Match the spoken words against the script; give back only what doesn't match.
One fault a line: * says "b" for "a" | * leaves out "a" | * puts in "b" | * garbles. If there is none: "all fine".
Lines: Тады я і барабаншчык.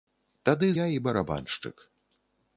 all fine